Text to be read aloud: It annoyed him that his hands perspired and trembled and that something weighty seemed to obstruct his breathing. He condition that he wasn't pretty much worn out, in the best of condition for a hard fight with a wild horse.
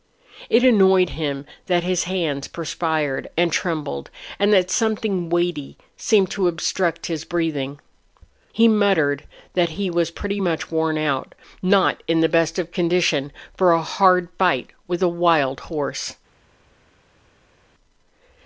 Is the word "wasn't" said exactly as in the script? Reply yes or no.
no